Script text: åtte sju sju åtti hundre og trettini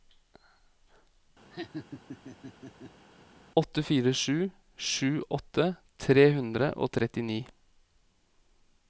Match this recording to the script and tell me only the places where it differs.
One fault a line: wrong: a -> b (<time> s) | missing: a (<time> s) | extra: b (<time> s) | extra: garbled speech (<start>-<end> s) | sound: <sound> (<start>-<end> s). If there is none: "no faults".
sound: laugh (1.5-3.1 s)
extra: fire (3.9 s)
extra: tre (6.1 s)